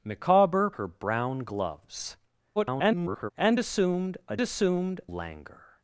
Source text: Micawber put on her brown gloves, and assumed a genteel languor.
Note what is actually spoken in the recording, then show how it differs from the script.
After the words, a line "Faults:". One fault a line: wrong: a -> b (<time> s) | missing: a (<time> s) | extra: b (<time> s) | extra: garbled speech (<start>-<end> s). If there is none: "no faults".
Micawber her brown gloves, [garbled] and assumed a assumed languor.
Faults:
missing: put on (0.7 s)
extra: garbled speech (2.6-3.3 s)
wrong: genteel -> assumed (4.4 s)